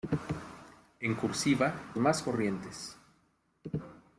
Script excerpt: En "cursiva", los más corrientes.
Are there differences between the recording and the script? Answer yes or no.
yes